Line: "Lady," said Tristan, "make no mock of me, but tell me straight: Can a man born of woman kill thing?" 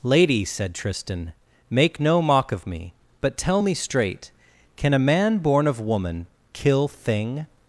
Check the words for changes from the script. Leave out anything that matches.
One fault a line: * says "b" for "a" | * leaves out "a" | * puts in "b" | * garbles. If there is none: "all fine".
all fine